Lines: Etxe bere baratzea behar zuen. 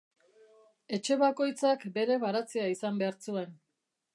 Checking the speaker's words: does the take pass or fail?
fail